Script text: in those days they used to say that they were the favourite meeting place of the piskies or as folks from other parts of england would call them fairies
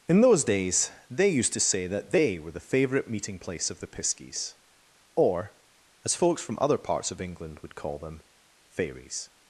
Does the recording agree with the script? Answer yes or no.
yes